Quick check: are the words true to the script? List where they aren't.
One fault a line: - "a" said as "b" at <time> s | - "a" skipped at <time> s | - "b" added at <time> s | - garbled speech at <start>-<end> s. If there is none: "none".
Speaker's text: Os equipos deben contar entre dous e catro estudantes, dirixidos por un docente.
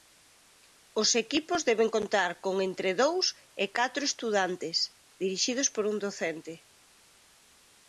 - "con" added at 2.4 s